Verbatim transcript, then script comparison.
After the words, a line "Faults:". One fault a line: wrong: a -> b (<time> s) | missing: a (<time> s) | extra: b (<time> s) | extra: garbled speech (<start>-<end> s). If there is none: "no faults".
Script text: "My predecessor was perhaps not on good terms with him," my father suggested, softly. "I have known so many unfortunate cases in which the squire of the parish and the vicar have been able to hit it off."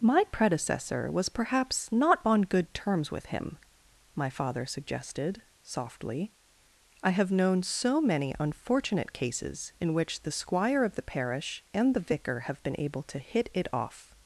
"My predecessor was perhaps not on good terms with him," my father suggested, softly. "I have known so many unfortunate cases in which the squire of the parish and the vicar have been able to hit it off."
Faults:
no faults